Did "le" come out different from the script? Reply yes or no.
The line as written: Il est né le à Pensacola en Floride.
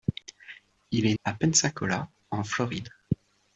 yes